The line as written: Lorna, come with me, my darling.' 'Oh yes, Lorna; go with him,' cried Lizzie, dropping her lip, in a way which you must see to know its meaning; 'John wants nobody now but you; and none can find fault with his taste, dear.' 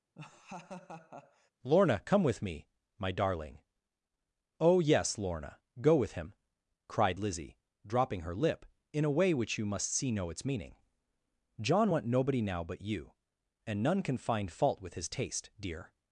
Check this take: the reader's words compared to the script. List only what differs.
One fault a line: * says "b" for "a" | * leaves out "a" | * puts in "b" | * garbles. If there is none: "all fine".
* leaves out "to"
* says "want" for "wants"